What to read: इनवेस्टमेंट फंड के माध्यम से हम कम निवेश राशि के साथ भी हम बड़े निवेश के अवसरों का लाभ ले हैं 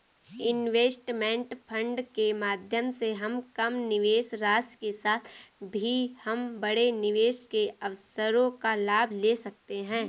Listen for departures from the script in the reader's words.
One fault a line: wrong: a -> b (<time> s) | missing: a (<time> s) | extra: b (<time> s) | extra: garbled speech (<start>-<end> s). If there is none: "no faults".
extra: सकते (9.4 s)